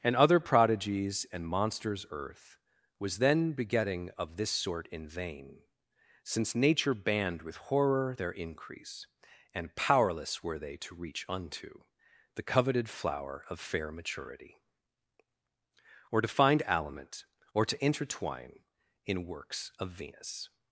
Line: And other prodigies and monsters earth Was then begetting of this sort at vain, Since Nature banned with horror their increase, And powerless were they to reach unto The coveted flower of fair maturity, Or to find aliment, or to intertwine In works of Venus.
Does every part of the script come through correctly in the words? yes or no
no